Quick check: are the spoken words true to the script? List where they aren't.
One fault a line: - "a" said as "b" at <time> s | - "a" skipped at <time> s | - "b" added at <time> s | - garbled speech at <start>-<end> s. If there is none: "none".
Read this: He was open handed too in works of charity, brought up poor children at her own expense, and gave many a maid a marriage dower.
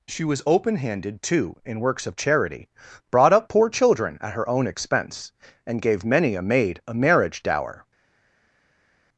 - "He" said as "She" at 0.1 s